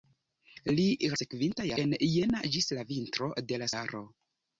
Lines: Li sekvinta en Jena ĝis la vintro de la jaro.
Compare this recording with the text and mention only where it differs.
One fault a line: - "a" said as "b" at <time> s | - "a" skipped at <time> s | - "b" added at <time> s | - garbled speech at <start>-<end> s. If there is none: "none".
none